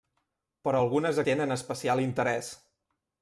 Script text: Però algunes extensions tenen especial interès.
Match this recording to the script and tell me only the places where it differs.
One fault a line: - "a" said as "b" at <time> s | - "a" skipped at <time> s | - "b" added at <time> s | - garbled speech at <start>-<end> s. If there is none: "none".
- "extensions" skipped at 1.2 s